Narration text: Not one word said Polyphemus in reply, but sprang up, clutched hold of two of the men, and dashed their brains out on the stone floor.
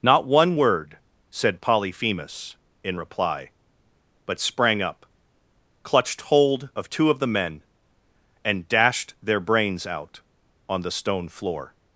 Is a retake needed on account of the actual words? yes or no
no